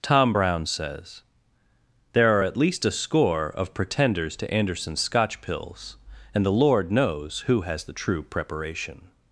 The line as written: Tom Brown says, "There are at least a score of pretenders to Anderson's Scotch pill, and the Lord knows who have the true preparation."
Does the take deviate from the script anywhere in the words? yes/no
yes